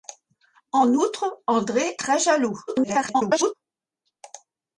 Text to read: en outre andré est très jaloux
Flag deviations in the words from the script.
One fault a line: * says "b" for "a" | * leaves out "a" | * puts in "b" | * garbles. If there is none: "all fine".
* leaves out "est"
* garbles